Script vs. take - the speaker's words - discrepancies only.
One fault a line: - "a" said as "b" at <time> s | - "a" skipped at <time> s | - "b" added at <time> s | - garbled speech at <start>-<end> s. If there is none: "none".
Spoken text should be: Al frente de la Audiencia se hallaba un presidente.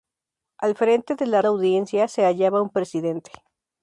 none